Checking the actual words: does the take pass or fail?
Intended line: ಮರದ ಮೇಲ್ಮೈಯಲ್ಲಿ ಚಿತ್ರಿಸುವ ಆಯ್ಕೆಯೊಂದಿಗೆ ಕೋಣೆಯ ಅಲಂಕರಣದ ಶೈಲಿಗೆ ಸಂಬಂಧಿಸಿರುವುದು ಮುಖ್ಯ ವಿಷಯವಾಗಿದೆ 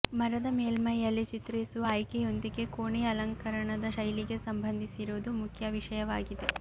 pass